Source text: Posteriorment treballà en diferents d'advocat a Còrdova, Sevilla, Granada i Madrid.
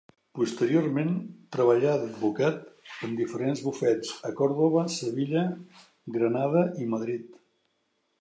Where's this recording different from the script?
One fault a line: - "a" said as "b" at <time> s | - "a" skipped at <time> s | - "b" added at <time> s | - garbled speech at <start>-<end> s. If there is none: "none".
- "d'advocat" added at 2.0 s
- "d'advocat" said as "bufets" at 3.7 s